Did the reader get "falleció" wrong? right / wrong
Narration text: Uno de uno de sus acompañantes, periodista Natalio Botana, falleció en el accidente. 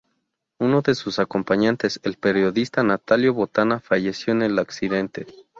right